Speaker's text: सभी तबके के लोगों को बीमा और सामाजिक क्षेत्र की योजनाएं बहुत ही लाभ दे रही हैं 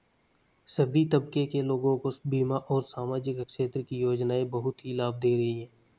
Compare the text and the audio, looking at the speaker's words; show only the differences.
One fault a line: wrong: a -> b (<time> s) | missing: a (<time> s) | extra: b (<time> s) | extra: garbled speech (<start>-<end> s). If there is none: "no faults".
no faults